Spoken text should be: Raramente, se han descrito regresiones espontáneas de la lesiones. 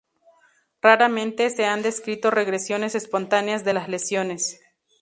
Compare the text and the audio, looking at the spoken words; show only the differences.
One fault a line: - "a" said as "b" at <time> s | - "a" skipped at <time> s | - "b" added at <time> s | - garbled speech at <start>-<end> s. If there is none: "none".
- "la" said as "las" at 3.7 s